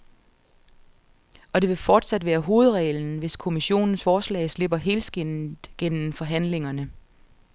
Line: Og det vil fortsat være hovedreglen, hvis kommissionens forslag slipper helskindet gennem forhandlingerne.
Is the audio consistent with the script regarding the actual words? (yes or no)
yes